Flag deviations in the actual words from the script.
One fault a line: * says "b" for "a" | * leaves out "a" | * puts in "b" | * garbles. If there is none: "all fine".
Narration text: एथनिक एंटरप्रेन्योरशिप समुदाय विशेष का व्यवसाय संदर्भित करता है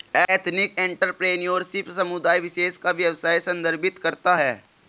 all fine